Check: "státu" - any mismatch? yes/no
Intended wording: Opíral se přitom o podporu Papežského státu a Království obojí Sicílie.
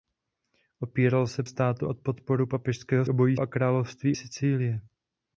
yes